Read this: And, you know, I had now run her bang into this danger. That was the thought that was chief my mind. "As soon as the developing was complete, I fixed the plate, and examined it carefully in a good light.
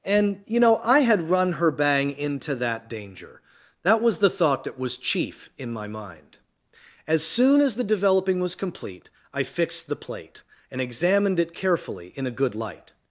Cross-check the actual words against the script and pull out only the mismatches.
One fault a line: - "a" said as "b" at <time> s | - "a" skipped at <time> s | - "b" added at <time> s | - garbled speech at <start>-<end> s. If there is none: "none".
- "now" skipped at 1.3 s
- "this" said as "that" at 2.5 s
- "in" added at 5.6 s